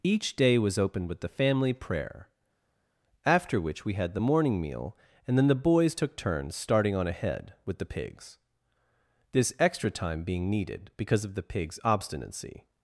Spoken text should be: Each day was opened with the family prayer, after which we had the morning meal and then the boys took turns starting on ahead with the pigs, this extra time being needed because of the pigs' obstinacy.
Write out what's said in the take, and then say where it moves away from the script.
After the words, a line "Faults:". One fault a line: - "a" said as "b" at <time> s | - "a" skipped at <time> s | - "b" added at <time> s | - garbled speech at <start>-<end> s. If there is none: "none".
Each day was opened with the family prayer, after which we had the morning meal and then the boys took turns starting on ahead with the pigs, this extra time being needed because of the pigs' obstinacy.
Faults:
none